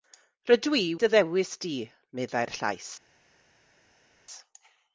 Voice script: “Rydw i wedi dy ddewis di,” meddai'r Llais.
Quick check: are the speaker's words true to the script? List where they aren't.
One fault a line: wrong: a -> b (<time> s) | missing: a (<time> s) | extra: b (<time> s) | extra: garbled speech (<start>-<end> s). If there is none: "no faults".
missing: wedi (0.8 s)